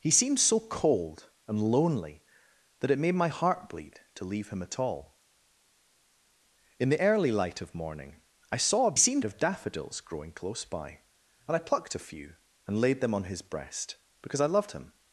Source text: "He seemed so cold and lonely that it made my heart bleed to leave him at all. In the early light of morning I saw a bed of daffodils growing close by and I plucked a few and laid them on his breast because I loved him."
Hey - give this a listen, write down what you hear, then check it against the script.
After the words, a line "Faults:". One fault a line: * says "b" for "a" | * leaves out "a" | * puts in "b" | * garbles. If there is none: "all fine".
"He seemed so cold and lonely that it made my heart bleed to leave him at all. In the early light of morning I saw a seemed of daffodils growing close by and I plucked a few and laid them on his breast because I loved him."
Faults:
* says "seemed" for "bed"